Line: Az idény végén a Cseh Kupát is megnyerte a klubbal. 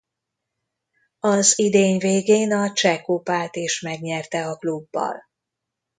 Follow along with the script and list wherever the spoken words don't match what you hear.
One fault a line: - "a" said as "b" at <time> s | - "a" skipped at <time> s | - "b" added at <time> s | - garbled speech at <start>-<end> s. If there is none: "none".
none